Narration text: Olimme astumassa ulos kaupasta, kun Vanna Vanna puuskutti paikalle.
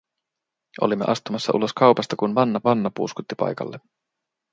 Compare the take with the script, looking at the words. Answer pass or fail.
pass